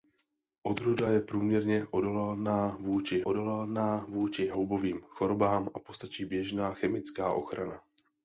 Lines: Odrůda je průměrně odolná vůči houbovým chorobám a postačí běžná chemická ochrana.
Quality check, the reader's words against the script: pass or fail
fail